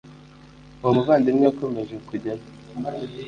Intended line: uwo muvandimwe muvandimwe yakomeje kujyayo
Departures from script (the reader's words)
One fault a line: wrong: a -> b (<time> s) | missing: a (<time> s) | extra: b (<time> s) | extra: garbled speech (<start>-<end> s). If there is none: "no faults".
missing: muvandimwe (1.4 s)